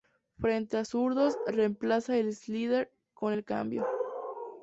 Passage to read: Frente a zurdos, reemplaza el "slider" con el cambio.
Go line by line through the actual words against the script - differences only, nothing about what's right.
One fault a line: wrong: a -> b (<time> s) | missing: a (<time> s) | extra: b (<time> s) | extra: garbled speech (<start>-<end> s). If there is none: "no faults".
no faults